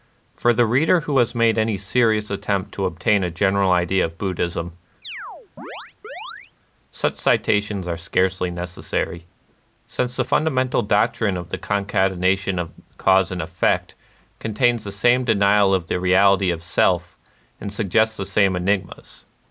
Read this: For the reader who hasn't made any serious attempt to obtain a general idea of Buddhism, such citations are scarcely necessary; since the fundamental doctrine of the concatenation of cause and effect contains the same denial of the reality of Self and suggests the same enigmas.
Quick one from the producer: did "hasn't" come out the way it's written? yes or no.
no